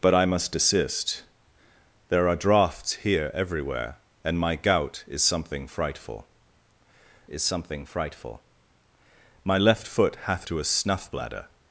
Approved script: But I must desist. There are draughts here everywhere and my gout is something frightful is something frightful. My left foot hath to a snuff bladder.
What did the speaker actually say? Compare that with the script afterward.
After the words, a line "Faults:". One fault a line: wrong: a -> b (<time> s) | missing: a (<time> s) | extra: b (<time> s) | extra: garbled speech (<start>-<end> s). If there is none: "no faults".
But I must desist. There are draughts here everywhere and my gout is something frightful is something frightful. My left foot hath to a snuff bladder.
Faults:
no faults